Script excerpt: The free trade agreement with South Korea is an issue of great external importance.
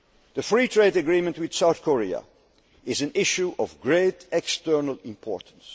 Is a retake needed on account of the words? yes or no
no